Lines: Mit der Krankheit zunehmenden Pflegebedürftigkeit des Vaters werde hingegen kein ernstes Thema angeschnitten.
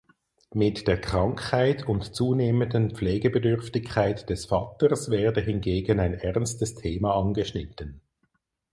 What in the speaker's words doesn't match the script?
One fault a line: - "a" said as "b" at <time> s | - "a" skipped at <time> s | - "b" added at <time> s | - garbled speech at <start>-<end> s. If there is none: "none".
- "und" added at 1.9 s
- "kein" said as "ein" at 6.0 s